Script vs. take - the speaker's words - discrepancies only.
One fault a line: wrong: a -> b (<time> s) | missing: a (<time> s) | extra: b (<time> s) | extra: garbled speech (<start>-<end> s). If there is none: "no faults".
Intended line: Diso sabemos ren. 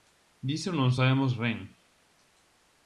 extra: non (0.8 s)